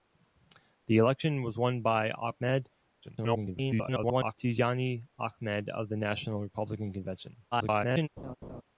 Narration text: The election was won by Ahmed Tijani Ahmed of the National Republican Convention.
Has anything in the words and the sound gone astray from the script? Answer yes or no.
yes